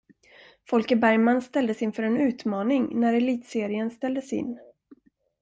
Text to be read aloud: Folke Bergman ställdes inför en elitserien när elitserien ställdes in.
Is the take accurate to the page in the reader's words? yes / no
no